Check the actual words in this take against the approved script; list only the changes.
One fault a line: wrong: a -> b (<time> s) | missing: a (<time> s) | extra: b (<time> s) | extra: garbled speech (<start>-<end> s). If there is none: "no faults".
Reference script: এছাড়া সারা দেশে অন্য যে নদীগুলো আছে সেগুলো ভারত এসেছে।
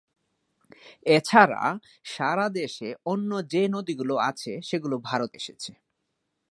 no faults